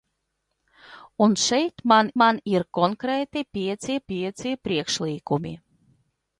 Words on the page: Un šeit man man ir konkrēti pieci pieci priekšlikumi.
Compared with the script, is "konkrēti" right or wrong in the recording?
right